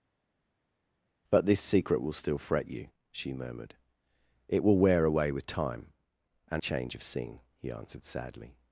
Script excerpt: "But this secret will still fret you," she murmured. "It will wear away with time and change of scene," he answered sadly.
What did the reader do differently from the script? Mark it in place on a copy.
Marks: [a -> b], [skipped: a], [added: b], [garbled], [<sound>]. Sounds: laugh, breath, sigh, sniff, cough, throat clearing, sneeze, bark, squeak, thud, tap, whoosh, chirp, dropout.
"But this secret will still fret you," she murmured. "It will wear away with time and change of scene," he answered sadly.